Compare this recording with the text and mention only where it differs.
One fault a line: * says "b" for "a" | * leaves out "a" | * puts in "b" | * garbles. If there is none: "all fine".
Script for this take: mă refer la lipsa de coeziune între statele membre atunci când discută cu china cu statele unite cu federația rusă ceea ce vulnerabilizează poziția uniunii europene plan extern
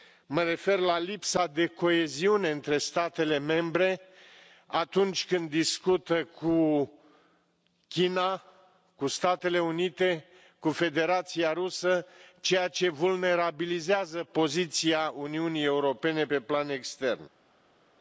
* puts in "pe"